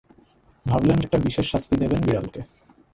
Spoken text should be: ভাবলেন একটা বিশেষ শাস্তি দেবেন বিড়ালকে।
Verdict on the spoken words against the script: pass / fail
pass